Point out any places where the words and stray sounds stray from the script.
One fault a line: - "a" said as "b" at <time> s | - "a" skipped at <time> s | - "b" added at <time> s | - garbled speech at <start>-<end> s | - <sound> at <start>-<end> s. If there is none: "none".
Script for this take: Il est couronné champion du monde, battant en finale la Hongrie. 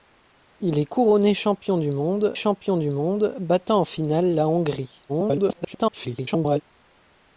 - "champion du monde" added at 2.3 s
- garbled speech at 5.1-6.6 s